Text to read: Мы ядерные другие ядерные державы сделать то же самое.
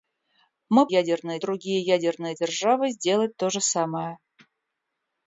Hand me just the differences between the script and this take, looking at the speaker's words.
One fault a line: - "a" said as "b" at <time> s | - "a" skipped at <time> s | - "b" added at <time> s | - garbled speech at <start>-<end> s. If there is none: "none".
none